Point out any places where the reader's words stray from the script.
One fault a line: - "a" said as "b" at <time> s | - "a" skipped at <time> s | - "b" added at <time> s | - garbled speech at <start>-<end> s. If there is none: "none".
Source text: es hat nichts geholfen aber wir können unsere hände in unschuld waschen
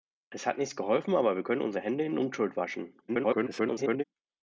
- garbled speech at 3.1-4.0 s